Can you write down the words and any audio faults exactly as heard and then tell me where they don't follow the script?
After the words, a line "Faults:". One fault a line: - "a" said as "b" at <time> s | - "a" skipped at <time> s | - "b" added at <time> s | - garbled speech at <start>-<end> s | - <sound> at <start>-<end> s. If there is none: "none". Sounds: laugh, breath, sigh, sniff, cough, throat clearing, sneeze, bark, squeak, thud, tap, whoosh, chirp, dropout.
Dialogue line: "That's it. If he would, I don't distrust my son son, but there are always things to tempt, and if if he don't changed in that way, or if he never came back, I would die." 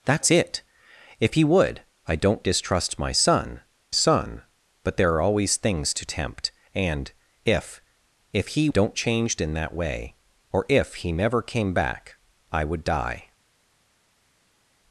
"That's it. If he would, I don't distrust my son son, but there are always things to tempt, and if if he don't changed in that way, or if he never came back, I would die."
Faults:
none